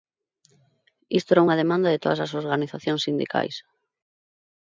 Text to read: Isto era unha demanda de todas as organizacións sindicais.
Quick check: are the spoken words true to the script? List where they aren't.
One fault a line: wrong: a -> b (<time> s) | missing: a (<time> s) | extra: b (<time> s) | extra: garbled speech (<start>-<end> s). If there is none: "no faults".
no faults